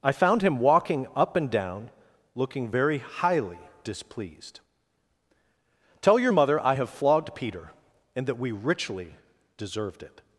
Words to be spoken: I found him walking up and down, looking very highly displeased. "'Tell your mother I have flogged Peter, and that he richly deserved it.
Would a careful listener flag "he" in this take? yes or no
yes